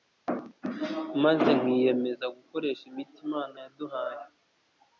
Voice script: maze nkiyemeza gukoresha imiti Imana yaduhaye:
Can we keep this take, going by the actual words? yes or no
yes